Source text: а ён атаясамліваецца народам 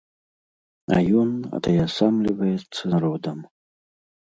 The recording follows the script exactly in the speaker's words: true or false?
true